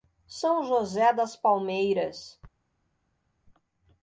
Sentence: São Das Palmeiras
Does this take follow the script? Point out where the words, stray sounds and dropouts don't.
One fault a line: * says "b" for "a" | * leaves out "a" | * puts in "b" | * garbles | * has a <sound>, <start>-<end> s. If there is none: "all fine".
* puts in "José"